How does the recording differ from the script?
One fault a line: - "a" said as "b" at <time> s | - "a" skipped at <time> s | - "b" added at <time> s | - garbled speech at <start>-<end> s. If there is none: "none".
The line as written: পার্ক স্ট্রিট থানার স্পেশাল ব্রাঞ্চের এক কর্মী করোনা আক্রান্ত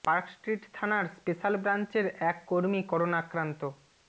none